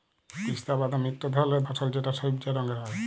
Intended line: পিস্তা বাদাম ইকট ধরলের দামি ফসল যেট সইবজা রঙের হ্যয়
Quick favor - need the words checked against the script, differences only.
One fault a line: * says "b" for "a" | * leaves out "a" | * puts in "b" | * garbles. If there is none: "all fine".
* leaves out "দামি"